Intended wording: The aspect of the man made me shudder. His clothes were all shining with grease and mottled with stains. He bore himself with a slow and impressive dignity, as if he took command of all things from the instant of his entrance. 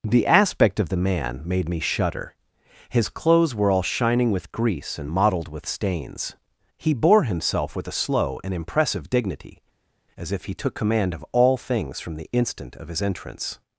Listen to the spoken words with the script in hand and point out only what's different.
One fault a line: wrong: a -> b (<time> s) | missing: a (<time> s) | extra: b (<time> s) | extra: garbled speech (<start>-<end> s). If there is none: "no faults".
no faults